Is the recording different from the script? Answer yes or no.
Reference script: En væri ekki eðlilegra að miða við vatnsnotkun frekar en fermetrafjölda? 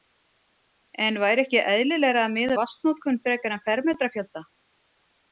yes